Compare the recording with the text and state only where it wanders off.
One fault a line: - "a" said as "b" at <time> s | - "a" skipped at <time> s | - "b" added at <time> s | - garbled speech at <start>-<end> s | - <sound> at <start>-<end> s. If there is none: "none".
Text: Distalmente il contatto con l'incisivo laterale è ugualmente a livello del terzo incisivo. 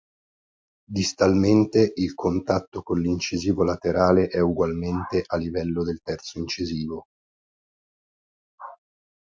none